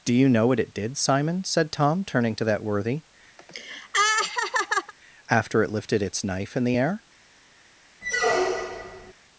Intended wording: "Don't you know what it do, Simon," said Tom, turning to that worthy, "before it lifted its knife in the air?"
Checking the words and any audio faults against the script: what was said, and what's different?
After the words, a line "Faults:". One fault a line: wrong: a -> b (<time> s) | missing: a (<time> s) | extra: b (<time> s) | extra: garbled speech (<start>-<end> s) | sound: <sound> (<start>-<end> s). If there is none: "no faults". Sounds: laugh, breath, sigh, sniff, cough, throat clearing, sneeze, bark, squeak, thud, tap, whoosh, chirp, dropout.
"Do you know what it did, Simon," said Tom, turning to that worthy, "after it lifted its knife in the air?"
Faults:
wrong: Don't -> Do (0.0 s)
wrong: do -> did (0.7 s)
sound: laugh (3.4-4.9 s)
wrong: before -> after (5.3 s)
sound: squeak (8.0-9.1 s)